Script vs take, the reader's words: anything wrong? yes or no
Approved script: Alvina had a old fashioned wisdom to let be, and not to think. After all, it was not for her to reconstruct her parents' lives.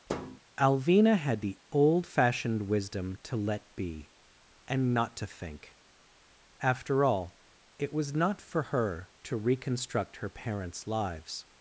yes